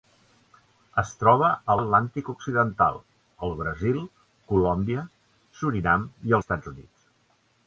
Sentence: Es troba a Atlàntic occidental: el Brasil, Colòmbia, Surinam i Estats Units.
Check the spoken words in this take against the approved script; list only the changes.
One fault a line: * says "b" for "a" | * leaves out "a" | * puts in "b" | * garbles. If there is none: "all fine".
all fine